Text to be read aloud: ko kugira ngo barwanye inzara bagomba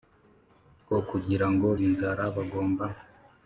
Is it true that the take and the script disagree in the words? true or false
true